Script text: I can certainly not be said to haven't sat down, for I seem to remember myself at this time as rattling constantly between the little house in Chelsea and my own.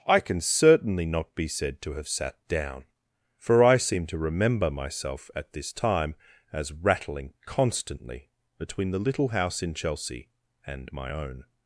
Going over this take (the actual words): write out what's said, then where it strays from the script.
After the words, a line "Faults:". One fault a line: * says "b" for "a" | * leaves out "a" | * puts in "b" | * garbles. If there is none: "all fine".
I can certainly not be said to have sat down, for I seem to remember myself at this time as rattling constantly between the little house in Chelsea and my own.
Faults:
* says "have" for "haven't"